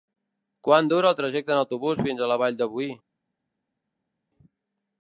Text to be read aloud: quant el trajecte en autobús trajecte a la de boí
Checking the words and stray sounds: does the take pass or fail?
fail